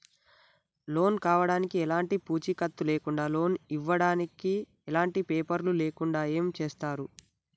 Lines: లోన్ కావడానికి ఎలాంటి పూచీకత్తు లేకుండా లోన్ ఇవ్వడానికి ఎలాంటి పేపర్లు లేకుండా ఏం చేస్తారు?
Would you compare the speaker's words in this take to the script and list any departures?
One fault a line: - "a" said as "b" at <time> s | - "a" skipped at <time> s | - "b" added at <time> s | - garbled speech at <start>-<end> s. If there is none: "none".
none